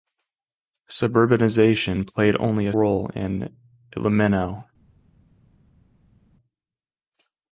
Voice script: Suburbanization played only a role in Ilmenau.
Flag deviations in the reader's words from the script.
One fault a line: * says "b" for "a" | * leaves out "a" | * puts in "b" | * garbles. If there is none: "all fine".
all fine